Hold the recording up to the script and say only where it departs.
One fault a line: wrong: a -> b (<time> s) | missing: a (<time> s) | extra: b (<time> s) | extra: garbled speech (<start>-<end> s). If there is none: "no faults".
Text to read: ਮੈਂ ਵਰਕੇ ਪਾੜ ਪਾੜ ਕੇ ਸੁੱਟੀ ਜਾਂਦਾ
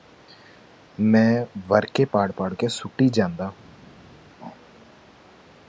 no faults